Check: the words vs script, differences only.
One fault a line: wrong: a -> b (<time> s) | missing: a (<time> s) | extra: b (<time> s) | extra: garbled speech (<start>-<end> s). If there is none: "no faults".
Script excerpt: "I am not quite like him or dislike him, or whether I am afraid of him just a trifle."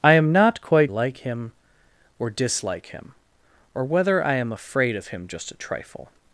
no faults